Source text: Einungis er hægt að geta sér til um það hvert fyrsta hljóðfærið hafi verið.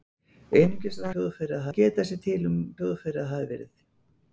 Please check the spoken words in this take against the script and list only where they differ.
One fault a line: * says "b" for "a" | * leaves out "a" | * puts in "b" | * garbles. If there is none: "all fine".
* says "hljóðfærið" for "hægt"
* leaves out "það hvert fyrsta"